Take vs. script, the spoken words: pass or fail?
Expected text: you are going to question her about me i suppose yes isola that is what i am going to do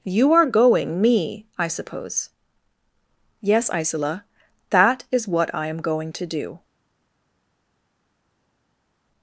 fail